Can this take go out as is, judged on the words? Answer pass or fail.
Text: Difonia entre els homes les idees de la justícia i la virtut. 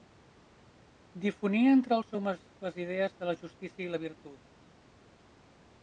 pass